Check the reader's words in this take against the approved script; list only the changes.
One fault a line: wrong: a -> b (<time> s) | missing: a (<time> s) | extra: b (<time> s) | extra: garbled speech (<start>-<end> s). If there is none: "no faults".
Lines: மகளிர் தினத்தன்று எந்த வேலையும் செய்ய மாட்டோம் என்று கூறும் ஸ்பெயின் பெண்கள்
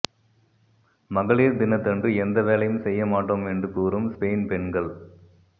no faults